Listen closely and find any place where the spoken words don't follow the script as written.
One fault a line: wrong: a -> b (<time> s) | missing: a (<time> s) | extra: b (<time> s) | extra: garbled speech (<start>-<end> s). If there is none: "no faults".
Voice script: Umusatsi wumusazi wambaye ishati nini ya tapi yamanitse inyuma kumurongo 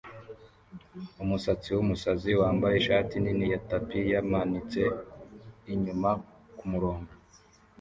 no faults